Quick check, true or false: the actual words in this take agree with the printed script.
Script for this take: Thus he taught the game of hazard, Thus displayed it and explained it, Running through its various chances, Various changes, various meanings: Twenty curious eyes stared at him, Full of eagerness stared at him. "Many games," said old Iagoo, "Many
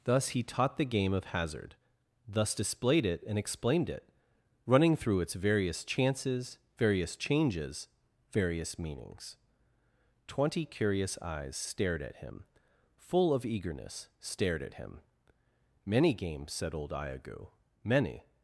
true